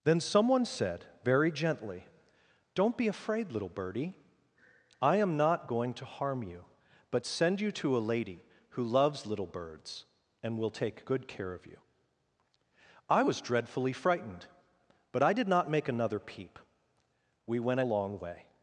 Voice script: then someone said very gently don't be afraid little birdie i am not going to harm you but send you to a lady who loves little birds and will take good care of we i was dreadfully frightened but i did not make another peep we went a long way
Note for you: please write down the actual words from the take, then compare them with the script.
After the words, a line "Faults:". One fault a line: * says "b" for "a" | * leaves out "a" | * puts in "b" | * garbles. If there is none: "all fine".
then someone said very gently don't be afraid little birdie i am not going to harm you but send you to a lady who loves little birds and will take good care of you i was dreadfully frightened but i did not make another peep we went a long way
Faults:
* says "you" for "we"